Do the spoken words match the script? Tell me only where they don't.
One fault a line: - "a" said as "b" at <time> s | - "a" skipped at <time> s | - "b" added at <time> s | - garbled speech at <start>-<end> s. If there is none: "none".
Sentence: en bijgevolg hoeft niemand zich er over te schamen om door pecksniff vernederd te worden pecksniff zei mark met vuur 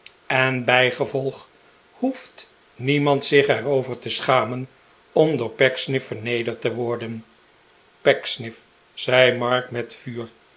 none